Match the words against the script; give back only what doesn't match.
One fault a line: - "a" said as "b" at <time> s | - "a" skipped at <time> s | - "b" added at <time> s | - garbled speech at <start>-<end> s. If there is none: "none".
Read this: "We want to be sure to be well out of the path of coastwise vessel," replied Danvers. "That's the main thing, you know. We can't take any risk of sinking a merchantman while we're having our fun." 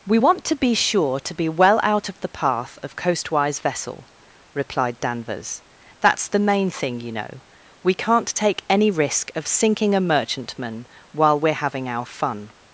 none